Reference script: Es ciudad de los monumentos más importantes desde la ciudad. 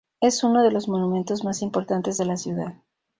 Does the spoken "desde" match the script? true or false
false